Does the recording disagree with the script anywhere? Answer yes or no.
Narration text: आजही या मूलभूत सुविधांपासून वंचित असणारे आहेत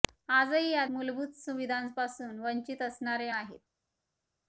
no